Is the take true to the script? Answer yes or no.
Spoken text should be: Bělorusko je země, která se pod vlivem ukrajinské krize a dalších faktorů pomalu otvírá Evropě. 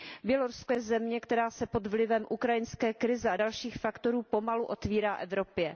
yes